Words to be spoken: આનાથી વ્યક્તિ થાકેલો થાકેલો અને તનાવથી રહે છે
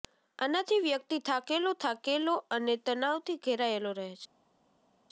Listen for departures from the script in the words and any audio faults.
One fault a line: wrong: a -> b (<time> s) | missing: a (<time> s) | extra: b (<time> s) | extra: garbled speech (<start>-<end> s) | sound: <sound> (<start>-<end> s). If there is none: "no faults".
extra: ઘેરાયેલો (3.4 s)